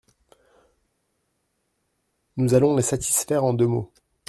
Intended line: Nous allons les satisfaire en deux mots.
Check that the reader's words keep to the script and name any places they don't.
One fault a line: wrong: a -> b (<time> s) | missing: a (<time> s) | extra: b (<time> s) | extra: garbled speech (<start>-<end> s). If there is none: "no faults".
no faults